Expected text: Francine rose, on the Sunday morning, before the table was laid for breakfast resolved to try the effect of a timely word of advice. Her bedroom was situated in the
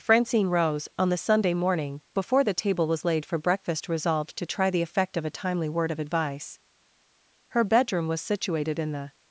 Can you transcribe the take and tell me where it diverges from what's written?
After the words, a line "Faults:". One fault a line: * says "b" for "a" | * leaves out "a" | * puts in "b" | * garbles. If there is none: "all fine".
Francine rose, on the Sunday morning, before the table was laid for breakfast resolved to try the effect of a timely word of advice. Her bedroom was situated in the
Faults:
all fine